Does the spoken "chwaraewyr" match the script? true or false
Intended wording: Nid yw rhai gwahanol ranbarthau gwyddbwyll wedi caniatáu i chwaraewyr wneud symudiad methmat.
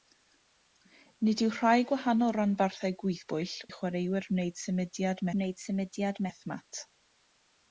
false